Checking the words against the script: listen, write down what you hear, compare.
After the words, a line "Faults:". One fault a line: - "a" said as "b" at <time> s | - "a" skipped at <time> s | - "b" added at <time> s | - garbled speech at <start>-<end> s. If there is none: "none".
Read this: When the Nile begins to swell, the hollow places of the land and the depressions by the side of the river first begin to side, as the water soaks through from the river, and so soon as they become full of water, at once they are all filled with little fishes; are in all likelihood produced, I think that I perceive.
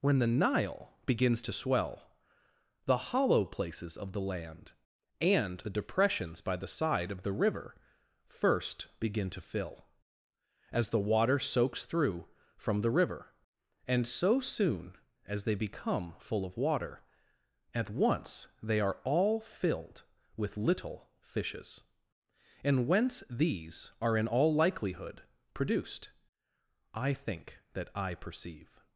When the Nile begins to swell, the hollow places of the land and the depressions by the side of the river first begin to fill, as the water soaks through from the river, and so soon as they become full of water, at once they are all filled with little fishes; and whence these are in all likelihood produced, I think that I perceive.
Faults:
- "side" said as "fill" at 9.4 s
- "and whence these" added at 22.6 s